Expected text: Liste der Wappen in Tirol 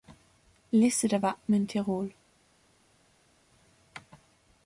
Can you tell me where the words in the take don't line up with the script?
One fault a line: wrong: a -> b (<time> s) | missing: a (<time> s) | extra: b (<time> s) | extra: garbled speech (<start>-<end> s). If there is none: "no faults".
no faults